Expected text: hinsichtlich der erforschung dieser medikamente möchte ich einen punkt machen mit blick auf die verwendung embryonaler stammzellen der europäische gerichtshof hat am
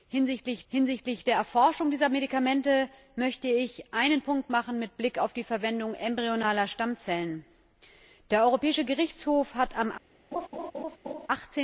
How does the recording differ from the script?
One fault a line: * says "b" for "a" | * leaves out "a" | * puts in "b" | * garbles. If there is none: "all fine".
* puts in "hinsichtlich"